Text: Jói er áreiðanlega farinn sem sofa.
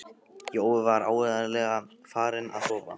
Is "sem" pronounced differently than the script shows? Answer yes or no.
yes